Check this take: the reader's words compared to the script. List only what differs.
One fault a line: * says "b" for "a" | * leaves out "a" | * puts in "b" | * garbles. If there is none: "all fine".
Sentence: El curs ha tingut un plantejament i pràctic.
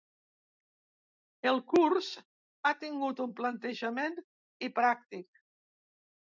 all fine